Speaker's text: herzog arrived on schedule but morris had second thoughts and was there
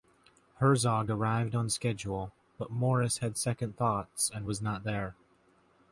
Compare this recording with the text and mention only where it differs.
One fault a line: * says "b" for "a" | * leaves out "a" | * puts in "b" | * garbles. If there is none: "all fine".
* puts in "not"